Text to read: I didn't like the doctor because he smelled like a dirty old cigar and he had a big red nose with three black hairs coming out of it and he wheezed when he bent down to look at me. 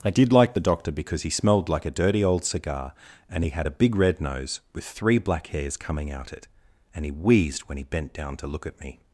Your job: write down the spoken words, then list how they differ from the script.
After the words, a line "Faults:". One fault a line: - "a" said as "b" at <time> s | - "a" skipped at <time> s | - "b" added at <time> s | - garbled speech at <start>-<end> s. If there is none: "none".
I did like the doctor because he smelled like a dirty old cigar and he had a big red nose with three black hairs coming out it and he wheezed when he bent down to look at me.
Faults:
- "didn't" said as "did" at 0.1 s
- "of" skipped at 6.3 s